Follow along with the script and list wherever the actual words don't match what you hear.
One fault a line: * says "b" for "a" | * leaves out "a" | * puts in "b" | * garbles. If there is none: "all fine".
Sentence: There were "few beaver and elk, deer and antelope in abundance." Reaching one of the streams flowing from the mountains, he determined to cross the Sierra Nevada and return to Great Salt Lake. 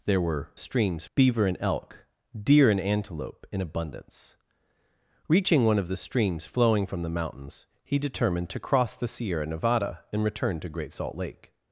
* says "streams" for "few"